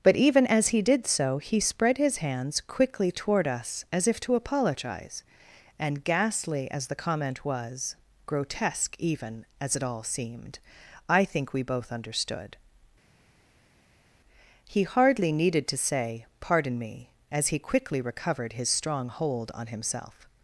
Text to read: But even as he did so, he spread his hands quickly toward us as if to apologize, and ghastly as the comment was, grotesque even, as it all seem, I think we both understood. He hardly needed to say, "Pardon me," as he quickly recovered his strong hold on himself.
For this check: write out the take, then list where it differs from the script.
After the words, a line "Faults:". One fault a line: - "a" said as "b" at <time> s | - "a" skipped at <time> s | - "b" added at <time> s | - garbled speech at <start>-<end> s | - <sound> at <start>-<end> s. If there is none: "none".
But even as he did so, he spread his hands quickly toward us as if to apologize, and ghastly as the comment was, grotesque even, as it all seemed, I think we both understood. He hardly needed to say, "Pardon me," as he quickly recovered his strong hold on himself.
Faults:
- "seem" said as "seemed" at 10.0 s